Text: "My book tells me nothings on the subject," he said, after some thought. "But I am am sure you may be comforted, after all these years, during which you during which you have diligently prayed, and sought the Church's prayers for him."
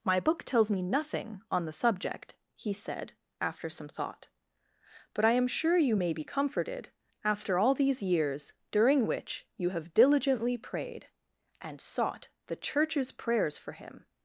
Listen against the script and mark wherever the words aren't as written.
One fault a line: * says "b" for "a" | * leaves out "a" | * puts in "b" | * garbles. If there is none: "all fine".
* says "nothing" for "nothings"
* leaves out "am"
* leaves out "during which you"